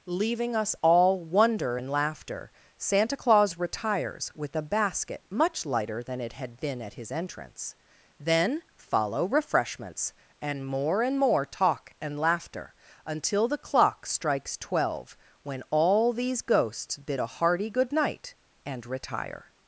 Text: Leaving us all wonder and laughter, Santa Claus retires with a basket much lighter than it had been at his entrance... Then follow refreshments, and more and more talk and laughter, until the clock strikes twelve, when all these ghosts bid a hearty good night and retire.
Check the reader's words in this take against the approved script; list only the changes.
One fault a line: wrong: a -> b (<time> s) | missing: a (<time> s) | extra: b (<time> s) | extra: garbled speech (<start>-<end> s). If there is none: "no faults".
no faults